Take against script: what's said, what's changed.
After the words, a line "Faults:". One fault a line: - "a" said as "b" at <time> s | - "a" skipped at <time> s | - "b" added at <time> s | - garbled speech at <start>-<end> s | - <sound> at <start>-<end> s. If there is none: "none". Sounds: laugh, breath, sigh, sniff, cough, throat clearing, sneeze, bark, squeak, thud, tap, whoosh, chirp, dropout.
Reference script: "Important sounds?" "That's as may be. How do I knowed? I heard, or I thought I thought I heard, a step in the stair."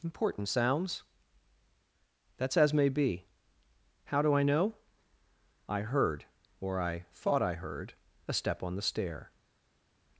"Important sounds?" "That's as may be. How do I know? I heard, or I thought I heard, a step on the stair."
Faults:
- "knowed" said as "know" at 4.4 s
- "thought I" skipped at 7.5 s
- "in" said as "on" at 8.6 s